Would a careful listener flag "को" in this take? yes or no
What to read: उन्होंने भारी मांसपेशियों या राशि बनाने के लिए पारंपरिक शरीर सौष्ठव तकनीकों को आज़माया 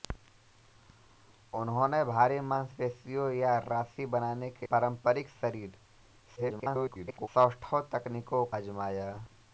yes